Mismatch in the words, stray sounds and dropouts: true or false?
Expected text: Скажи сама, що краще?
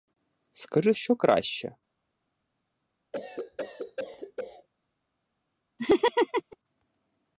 true